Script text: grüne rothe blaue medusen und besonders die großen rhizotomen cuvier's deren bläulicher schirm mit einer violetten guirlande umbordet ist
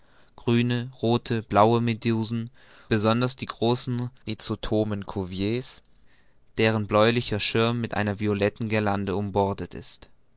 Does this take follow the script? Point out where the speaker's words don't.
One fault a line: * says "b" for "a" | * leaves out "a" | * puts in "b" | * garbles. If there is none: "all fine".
* leaves out "und"